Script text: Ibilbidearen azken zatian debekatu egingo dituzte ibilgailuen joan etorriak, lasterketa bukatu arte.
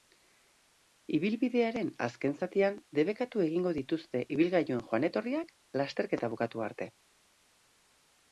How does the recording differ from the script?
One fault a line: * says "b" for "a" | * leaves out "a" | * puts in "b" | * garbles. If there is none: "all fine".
all fine